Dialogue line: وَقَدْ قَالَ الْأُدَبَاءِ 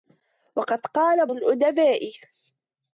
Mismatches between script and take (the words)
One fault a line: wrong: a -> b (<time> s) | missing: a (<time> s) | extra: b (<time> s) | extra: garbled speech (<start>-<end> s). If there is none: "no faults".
no faults